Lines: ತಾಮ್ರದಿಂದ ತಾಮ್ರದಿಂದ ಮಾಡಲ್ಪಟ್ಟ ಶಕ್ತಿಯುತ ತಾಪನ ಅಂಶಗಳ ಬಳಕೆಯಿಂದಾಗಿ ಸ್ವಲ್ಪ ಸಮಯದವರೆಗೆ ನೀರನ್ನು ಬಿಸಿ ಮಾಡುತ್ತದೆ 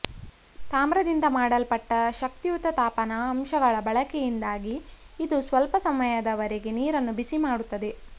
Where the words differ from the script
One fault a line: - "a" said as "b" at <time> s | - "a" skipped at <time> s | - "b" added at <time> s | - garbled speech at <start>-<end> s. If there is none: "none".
- "ತಾಮ್ರದಿಂದ" skipped at 1.2 s
- "ಇದು" added at 5.2 s